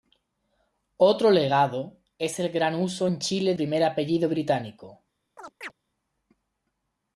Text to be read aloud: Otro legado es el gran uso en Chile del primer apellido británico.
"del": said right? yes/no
no